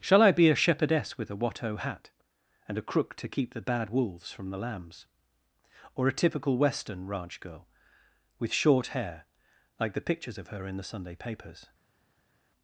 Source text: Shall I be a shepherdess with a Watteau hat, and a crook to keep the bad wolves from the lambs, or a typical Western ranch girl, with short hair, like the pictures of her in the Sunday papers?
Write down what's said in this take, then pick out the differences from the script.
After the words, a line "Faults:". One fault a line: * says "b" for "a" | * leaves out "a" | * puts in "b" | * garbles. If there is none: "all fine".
Shall I be a shepherdess with a Watteau hat, and a crook to keep the bad wolves from the lambs, or a typical Western ranch girl, with short hair, like the pictures of her in the Sunday papers?
Faults:
all fine